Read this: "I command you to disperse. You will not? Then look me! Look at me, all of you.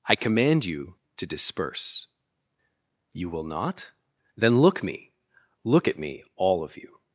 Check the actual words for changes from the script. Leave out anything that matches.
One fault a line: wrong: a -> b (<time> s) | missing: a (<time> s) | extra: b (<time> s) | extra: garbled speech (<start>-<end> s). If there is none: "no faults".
no faults